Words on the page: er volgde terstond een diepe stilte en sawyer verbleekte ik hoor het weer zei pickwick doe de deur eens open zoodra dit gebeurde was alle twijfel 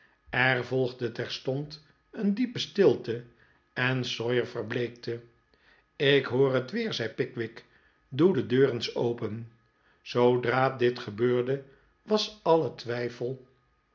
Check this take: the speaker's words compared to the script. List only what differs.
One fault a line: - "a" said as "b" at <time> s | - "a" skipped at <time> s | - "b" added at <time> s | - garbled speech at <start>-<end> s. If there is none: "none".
none